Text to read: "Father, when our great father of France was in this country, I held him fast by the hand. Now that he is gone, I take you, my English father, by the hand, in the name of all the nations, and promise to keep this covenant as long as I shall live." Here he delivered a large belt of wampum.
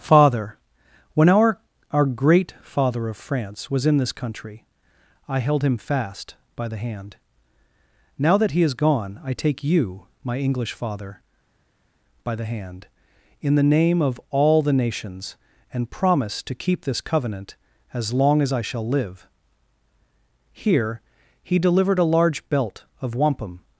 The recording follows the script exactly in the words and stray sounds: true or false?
false